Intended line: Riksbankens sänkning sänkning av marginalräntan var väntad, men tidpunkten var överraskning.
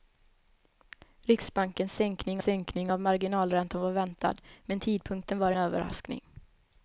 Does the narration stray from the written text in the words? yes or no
no